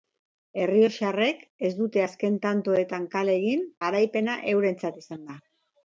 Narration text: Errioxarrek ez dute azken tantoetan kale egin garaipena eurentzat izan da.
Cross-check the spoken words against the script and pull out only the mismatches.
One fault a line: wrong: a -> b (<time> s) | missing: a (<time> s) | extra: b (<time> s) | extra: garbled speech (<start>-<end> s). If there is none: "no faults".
no faults